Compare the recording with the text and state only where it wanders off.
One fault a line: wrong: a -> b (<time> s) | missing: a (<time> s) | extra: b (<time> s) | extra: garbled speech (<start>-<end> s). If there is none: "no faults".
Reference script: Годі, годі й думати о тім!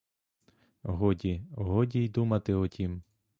no faults